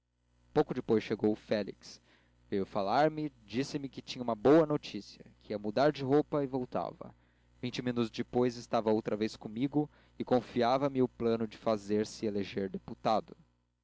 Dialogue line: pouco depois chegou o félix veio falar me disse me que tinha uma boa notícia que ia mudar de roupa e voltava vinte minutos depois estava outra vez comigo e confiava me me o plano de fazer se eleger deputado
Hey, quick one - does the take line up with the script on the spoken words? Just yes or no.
no